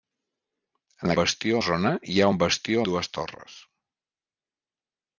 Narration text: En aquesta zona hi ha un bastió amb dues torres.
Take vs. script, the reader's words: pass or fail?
fail